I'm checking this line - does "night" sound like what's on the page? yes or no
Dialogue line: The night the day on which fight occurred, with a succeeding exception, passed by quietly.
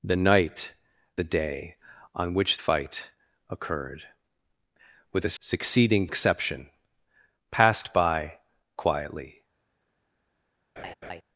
yes